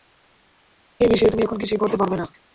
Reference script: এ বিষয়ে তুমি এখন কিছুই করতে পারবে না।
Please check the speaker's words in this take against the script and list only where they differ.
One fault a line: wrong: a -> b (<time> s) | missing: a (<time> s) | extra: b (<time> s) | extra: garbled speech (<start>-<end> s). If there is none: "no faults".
no faults